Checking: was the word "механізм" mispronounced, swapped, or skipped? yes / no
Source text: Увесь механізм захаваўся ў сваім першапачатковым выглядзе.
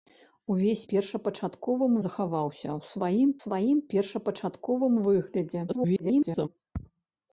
yes